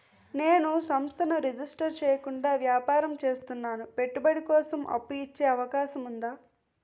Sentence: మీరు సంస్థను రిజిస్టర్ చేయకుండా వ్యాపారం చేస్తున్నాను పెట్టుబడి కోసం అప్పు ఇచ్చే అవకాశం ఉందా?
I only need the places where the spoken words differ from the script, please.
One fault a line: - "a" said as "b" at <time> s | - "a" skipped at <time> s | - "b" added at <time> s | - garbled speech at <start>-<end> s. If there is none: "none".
- "మీరు" said as "నేను" at 0.3 s